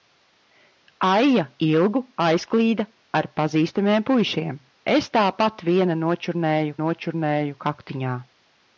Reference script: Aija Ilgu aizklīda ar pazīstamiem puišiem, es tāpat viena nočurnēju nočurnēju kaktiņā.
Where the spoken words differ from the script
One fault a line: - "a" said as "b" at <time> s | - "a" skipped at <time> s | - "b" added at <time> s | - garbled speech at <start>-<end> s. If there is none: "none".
none